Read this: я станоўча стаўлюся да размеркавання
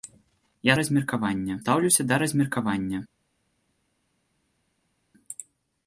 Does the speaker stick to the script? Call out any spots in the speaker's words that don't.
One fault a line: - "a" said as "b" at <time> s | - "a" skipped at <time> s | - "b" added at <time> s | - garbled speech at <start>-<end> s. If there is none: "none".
- "станоўча" said as "размеркавання" at 0.8 s